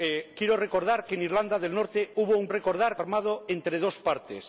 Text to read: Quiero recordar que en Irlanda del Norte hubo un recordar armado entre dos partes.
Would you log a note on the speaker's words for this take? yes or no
no